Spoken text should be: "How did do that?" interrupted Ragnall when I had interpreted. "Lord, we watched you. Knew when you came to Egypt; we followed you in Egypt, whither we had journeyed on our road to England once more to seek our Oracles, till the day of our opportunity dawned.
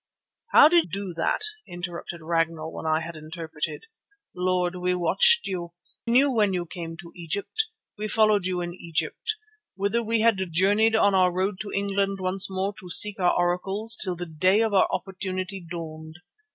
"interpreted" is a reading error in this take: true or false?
false